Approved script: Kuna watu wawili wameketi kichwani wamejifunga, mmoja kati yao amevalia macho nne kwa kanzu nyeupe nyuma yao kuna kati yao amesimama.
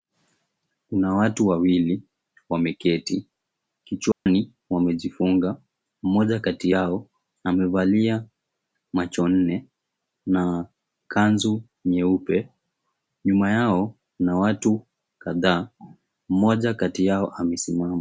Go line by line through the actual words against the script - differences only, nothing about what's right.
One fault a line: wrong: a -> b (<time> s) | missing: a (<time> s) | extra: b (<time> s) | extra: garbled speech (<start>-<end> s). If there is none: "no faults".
wrong: kwa -> na (10.2 s)
extra: watu kadhaa mmoja (14.4 s)